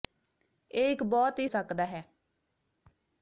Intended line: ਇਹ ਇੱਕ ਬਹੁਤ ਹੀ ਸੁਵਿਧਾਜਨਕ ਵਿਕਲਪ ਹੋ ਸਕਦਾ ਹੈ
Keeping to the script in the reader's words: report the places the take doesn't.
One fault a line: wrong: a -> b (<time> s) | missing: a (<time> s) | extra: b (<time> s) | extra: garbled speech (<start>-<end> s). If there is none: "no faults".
missing: ਸੁਵਿਧਾਜਨਕ ਵਿਕਲਪ ਹੋ (1.5 s)